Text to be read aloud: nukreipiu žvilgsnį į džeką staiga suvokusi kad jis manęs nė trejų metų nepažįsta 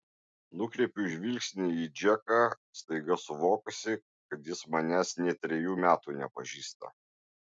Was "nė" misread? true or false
false